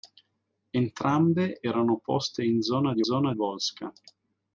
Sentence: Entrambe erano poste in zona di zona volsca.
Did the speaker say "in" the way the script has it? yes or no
yes